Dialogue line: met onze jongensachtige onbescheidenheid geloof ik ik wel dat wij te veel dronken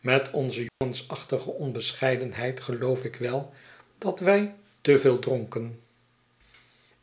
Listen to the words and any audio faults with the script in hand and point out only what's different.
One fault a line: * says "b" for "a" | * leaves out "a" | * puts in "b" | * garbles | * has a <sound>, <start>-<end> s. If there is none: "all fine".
* has a dropout, 0.7-0.8 s
* leaves out "ik"